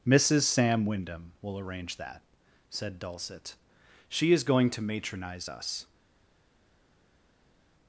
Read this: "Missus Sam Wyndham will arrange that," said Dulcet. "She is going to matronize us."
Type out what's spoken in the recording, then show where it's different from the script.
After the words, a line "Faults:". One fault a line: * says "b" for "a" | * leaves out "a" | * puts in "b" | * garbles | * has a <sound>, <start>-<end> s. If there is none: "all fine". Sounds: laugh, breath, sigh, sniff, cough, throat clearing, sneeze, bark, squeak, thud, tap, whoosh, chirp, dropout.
"Missus Sam Wyndham will arrange that," said Dulcet. "She is going to matronize us."
Faults:
all fine